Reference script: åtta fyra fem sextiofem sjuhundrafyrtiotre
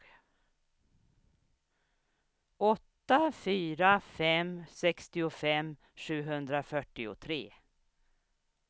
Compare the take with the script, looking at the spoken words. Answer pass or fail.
pass